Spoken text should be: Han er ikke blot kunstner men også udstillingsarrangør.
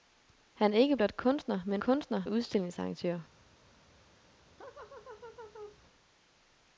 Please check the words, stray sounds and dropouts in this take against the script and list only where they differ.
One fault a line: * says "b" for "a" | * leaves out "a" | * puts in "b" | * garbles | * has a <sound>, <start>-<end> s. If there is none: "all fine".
* says "kunstner" for "også"
* has a laugh, 4.6-5.8 s